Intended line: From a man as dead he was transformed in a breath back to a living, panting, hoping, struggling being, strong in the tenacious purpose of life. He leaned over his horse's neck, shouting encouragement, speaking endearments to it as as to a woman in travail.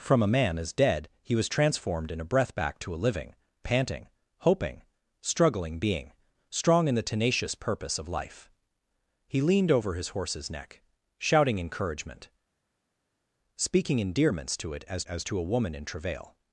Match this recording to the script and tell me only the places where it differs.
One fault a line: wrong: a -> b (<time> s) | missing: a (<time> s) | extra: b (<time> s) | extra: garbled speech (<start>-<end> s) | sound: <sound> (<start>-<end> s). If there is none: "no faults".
no faults